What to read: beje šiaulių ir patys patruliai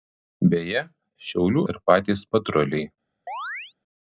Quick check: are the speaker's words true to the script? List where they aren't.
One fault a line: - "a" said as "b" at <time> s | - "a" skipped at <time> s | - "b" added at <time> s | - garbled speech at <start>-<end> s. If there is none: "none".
none